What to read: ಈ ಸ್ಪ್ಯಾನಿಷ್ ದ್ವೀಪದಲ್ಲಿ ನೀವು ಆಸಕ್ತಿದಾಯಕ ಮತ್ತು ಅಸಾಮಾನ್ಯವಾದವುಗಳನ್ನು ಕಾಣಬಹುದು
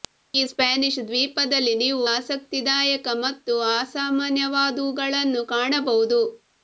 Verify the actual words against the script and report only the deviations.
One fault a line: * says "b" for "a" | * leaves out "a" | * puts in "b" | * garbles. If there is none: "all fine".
all fine